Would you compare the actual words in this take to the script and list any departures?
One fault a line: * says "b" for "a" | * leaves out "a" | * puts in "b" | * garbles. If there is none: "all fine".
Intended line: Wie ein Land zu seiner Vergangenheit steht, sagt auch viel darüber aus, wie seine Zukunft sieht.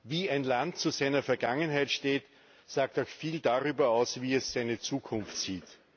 * puts in "es"